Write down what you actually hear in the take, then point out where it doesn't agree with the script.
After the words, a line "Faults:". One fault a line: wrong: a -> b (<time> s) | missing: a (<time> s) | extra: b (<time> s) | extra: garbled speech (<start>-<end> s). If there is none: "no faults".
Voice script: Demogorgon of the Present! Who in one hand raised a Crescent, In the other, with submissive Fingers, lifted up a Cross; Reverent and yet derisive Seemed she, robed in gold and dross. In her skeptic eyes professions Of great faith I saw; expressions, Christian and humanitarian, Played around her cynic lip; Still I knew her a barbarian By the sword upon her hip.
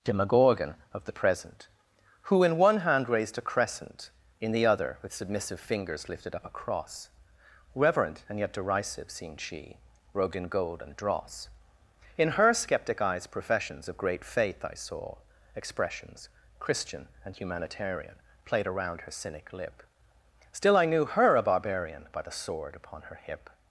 Demogorgon of the Present! Who in one hand raised a Crescent, In the other, with submissive Fingers, lifted up a Cross; Reverent and yet derisive Seemed she, robed in gold and dross. In her skeptic eyes professions Of great faith I saw; expressions, Christian and humanitarian, Played around her cynic lip; Still I knew her a barbarian By the sword upon her hip.
Faults:
no faults